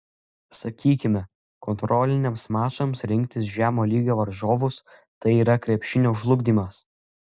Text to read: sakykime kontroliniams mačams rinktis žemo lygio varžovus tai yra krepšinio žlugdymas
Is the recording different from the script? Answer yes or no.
no